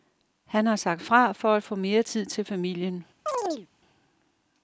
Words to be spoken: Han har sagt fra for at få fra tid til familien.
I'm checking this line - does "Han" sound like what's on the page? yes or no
yes